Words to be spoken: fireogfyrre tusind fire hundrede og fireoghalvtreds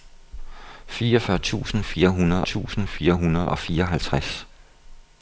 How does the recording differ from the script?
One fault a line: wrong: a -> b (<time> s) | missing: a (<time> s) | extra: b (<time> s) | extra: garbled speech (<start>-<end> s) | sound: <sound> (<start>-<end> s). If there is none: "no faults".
extra: tusind fire hundrede (2.4 s)